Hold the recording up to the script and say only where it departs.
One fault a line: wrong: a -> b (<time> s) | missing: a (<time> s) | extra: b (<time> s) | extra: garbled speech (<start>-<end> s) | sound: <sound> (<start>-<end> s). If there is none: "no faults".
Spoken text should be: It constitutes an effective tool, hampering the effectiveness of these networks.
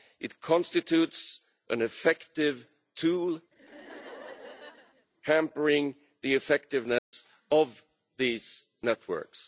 sound: laugh (3.5-5.1 s)
sound: dropout (7.0-7.1 s)